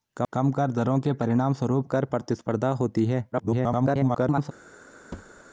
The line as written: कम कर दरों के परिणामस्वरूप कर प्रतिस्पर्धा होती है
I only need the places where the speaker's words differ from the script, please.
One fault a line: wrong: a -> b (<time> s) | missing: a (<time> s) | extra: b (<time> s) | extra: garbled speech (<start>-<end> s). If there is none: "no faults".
extra: garbled speech (3.3-4.5 s)